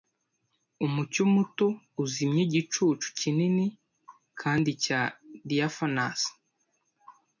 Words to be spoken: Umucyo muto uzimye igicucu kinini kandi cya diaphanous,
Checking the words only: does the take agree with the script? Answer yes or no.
yes